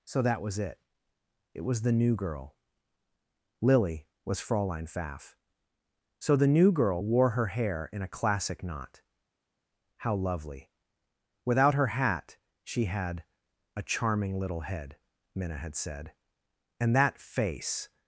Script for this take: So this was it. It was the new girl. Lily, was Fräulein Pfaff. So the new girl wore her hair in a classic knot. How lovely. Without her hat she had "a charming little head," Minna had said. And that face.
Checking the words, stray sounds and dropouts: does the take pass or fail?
fail